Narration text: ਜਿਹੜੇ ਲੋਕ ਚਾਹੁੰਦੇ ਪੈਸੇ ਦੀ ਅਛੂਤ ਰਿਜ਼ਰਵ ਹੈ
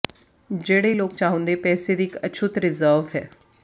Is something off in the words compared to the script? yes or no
yes